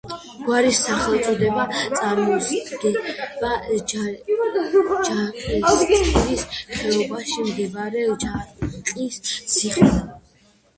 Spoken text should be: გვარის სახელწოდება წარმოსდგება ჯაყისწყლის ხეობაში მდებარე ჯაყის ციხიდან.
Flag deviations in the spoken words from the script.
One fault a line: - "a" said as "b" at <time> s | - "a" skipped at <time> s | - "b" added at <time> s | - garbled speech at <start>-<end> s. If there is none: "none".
none